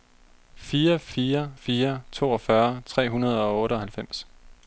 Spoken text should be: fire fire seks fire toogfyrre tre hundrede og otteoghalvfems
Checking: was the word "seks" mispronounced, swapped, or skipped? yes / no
yes